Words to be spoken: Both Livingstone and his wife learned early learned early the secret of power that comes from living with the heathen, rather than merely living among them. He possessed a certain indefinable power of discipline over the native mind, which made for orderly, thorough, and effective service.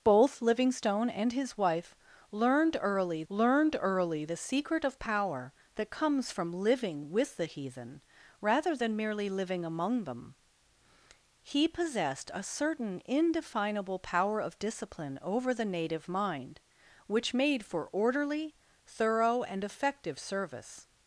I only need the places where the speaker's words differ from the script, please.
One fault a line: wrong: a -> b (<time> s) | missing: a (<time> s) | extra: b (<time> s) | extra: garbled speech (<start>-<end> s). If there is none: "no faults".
no faults